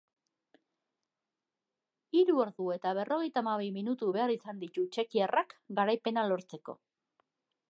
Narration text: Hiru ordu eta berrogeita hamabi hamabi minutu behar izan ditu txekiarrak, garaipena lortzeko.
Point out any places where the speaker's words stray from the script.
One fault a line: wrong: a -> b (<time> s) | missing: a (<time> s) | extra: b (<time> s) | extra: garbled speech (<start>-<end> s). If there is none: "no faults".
missing: hamabi (3.7 s)